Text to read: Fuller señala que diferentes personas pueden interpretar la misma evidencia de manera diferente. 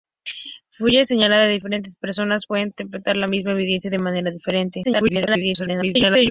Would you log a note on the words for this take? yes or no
yes